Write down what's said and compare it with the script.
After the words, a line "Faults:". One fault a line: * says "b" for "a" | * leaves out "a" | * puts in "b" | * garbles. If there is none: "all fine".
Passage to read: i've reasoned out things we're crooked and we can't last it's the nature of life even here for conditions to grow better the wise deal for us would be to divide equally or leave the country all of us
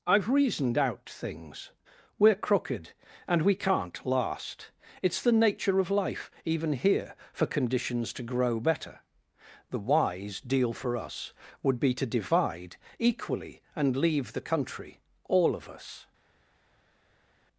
i've reasoned out things we're crooked and we can't last it's the nature of life even here for conditions to grow better the wise deal for us would be to divide equally and leave the country all of us
Faults:
* says "and" for "or"